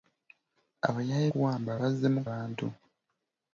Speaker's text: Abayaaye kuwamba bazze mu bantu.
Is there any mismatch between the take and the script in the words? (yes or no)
no